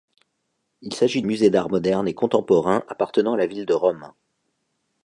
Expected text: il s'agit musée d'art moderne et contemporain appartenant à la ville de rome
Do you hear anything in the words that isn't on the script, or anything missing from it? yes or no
no